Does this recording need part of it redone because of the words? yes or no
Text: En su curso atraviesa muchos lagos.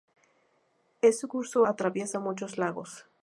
no